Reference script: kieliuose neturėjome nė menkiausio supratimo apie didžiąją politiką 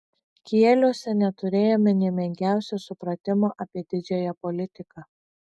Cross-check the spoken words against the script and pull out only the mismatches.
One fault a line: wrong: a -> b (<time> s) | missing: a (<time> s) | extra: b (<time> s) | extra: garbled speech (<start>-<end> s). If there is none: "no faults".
no faults